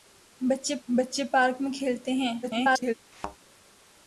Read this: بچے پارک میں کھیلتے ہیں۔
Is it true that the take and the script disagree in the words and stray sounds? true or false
true